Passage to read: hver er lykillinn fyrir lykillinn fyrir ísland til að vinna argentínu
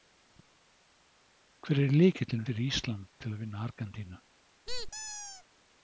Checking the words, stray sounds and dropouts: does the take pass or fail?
fail